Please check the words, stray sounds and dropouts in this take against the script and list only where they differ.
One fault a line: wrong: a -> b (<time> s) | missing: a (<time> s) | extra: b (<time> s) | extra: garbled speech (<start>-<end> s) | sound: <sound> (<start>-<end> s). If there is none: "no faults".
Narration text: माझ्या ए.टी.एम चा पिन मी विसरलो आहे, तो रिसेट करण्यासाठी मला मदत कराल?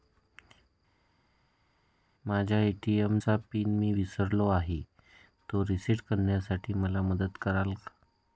no faults